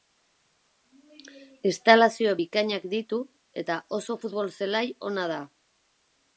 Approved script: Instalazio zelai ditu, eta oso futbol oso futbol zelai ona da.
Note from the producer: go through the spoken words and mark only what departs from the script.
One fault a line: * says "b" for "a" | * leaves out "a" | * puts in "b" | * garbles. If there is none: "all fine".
* says "bikainak" for "zelai"
* leaves out "oso futbol"